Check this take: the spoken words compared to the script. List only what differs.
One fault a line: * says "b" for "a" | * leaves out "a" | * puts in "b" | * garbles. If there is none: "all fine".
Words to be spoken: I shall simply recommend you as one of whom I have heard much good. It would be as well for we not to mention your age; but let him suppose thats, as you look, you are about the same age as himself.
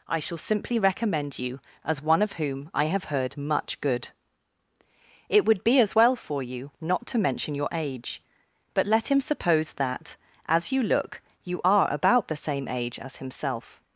* says "you" for "we"
* says "that" for "thats"